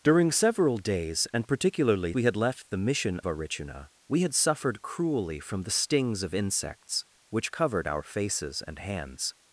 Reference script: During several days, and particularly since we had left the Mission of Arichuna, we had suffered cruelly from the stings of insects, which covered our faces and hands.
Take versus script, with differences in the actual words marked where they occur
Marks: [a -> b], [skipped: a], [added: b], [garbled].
During several days, and particularly [skipped: since] we had left the Mission [skipped: of] Arichuna, we had suffered cruelly from the stings of insects, which covered our faces and hands.